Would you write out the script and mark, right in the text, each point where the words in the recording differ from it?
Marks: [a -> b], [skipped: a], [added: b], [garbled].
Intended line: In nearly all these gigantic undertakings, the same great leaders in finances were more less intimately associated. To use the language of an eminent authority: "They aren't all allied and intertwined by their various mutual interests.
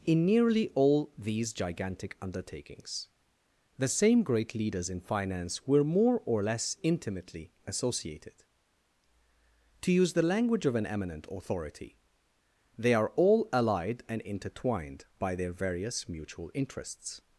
In nearly all these gigantic undertakings, the same great leaders in [finances -> finance] were more [added: or] less intimately associated. To use the language of an eminent authority: "They [aren't -> are] all allied and intertwined by their various mutual interests.